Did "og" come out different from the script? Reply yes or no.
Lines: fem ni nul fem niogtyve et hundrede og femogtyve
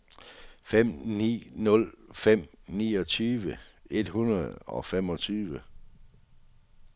no